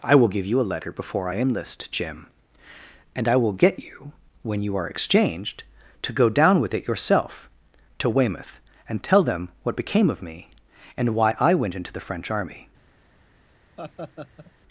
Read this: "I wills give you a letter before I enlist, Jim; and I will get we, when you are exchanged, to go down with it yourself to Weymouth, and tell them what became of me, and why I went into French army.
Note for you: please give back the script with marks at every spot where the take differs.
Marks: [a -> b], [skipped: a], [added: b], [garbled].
"I [wills -> will] give you a letter before I enlist, Jim; and I will get [we, -> you] when you are exchanged, to go down with it yourself to Weymouth, and tell them what became of me, and why I went into [added: the] French army.